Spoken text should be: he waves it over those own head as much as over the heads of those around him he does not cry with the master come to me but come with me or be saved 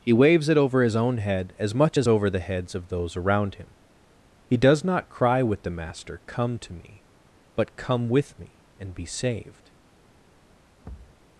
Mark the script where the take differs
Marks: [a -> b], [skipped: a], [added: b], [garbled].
he waves it over [those -> his] own head as much as over the heads of those around him he does not cry with the master come to me but come with me [or -> and] be saved